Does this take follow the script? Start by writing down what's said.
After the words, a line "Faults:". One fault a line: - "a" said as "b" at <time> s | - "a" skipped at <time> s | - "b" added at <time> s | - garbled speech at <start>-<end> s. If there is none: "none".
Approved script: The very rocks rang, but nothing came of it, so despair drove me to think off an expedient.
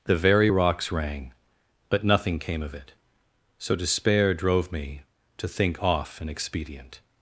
The very rocks rang, but nothing came of it, so despair drove me to think off an expedient.
Faults:
none